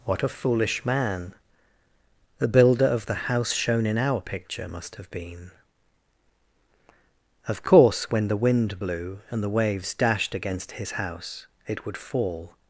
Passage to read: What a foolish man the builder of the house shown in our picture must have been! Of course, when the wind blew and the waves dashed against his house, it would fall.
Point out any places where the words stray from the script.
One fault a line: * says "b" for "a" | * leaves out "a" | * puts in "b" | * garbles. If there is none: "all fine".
all fine